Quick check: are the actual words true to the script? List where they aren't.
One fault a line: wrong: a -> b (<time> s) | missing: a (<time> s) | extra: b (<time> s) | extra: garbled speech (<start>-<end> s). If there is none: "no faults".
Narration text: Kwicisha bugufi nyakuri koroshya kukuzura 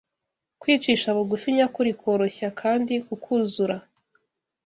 extra: kandi (2.6 s)